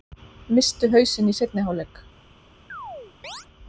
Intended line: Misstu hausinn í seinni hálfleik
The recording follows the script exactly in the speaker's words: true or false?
true